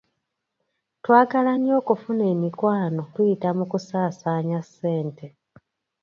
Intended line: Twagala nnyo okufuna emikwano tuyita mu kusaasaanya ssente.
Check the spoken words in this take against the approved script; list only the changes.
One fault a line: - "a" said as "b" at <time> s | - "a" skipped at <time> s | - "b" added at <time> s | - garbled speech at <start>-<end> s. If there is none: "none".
none